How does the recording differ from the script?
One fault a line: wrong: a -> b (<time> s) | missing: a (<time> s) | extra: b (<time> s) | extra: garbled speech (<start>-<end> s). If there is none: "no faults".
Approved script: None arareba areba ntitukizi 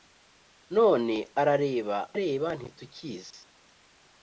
no faults